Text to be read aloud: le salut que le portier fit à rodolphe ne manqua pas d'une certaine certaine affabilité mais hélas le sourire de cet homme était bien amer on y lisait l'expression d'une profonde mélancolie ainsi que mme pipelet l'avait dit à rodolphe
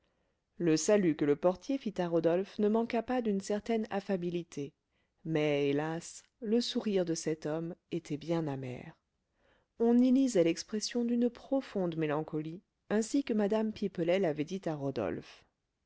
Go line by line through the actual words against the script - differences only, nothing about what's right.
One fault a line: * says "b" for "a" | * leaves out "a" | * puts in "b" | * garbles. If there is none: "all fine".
* leaves out "certaine"